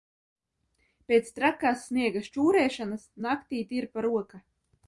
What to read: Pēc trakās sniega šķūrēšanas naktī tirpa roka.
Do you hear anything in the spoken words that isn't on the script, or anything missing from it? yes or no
no